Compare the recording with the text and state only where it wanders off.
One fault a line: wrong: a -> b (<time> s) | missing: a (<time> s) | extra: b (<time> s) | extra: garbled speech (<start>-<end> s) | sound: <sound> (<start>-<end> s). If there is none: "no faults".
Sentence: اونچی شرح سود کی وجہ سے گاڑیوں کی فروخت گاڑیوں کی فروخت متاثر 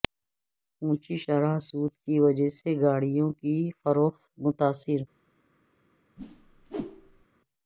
missing: گاڑیوں کی فروخت (4.2 s)
sound: whoosh (6.2-7.3 s)